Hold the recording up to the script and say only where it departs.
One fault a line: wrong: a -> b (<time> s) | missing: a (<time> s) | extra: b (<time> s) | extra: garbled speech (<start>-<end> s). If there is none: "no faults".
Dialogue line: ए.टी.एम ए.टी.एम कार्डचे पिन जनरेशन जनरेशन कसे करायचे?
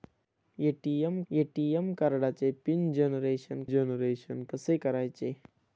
no faults